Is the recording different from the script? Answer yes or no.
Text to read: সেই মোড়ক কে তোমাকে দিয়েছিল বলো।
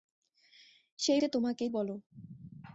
yes